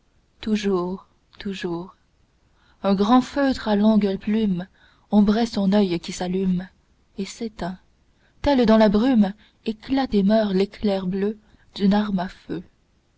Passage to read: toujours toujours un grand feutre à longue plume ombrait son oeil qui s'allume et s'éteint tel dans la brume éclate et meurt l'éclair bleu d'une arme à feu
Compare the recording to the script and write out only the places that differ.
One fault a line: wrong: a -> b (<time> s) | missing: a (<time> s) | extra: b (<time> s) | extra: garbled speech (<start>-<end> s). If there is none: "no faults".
no faults